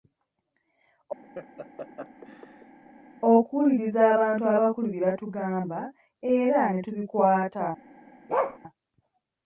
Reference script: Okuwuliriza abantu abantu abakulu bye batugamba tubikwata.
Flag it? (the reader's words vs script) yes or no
yes